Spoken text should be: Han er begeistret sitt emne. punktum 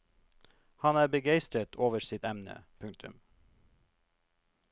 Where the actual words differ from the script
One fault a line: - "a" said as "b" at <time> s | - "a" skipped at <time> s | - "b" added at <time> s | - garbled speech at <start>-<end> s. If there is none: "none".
- "over" added at 1.8 s